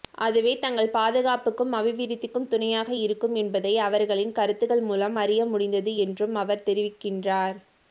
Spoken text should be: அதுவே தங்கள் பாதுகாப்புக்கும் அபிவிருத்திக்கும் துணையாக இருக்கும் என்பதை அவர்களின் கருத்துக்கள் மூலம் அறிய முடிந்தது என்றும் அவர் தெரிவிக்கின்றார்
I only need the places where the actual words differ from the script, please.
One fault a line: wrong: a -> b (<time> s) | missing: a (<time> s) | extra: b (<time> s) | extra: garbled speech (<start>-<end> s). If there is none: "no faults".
no faults